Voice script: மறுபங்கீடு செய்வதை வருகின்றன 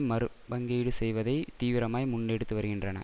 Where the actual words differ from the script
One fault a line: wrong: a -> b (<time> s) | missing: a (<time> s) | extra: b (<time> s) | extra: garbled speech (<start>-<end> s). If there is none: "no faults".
extra: தீவிரமாய் முன்னெடுத்து (1.6 s)